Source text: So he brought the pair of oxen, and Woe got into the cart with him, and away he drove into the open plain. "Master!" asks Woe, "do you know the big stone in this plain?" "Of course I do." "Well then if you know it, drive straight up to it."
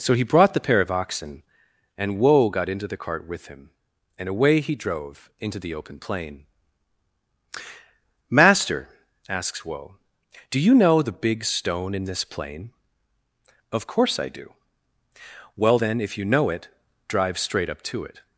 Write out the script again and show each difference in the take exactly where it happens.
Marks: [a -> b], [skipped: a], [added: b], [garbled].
So he brought the pair of oxen, and Woe got into the cart with him, and away he drove into the open plain. "Master!" asks Woe, "do you know the big stone in this plain?" "Of course I do." "Well then if you know it, drive straight up to it."